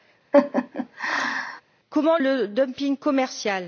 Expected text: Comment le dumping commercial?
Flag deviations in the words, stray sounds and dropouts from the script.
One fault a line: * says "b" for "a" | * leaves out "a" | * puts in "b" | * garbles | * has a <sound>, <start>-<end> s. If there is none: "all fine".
* has a laugh, 0.3-1.6 s